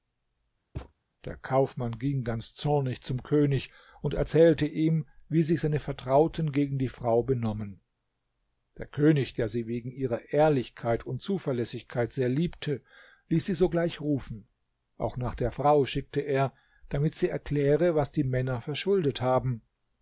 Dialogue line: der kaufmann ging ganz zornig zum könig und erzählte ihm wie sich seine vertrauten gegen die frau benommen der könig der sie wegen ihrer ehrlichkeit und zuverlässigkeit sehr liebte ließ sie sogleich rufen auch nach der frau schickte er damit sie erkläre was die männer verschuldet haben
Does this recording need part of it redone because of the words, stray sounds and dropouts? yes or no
yes